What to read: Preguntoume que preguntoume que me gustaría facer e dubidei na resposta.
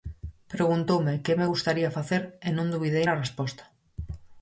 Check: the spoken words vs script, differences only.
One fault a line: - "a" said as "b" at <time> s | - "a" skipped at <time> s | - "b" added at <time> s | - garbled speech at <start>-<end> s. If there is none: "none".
- "preguntoume que" skipped at 1.4 s
- "non" added at 2.6 s